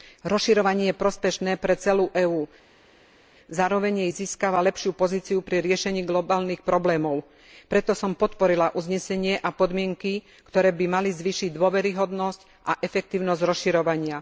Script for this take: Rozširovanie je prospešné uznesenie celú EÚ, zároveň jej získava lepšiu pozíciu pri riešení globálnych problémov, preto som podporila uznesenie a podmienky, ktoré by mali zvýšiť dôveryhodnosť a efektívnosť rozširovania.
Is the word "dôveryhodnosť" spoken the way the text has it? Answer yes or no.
yes